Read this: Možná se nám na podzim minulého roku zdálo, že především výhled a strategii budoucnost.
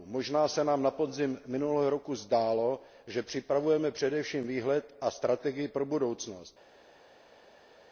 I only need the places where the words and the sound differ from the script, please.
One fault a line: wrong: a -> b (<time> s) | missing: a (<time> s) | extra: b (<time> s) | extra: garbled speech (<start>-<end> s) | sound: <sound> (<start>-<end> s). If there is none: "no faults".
extra: připravujeme (3.2 s)
extra: pro (5.7 s)